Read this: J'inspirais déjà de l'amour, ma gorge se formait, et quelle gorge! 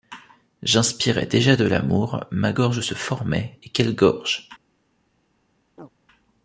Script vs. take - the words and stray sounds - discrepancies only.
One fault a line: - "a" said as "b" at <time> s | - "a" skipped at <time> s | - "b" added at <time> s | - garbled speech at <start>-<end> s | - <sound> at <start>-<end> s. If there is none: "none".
- chirp at 5.8-5.9 s